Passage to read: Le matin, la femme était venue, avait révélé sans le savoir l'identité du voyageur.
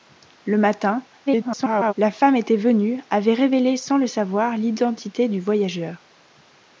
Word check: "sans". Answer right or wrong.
right